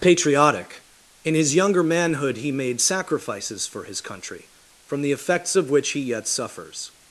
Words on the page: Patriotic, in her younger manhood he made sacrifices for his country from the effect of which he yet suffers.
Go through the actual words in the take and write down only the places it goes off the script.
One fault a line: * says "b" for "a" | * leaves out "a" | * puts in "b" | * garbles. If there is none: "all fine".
* says "his" for "her"
* says "effects" for "effect"